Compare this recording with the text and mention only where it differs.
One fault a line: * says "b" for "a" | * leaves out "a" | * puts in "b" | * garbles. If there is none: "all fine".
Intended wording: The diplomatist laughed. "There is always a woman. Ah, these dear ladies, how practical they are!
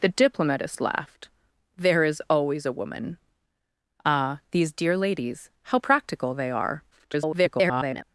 * garbles